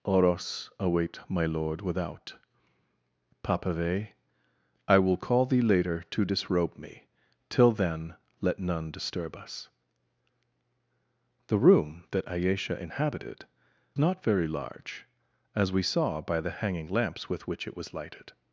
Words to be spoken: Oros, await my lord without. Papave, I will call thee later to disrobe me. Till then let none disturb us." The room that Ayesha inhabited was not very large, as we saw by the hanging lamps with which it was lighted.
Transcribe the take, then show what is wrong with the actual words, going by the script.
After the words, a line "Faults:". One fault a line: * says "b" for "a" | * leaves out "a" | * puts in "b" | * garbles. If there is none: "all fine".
Oros, await my lord without. Papave, I will call thee later to disrobe me. Till then let none disturb us." The room that Ayesha inhabited not very large, as we saw by the hanging lamps with which it was lighted.
Faults:
* leaves out "was"